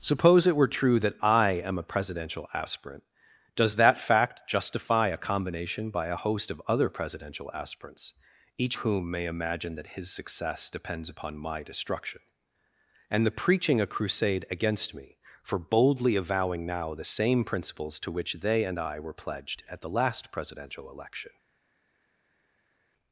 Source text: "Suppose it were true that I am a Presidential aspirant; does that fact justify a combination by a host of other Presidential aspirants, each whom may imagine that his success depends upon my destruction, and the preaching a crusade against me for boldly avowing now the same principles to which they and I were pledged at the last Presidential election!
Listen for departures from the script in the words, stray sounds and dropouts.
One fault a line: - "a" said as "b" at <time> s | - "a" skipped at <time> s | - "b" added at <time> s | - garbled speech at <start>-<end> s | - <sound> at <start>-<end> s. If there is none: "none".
none